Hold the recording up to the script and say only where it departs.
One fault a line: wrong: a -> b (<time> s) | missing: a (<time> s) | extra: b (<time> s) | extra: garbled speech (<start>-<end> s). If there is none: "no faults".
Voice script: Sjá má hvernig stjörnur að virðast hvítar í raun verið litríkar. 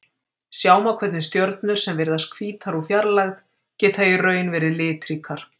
wrong: að -> sem (1.8 s)
extra: úr fjarlægð geta (2.8 s)